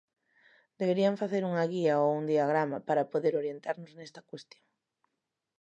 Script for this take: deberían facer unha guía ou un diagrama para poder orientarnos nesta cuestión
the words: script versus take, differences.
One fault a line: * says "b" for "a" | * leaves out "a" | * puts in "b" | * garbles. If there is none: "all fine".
all fine